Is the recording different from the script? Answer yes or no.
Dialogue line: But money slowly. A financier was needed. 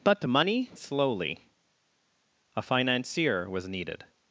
no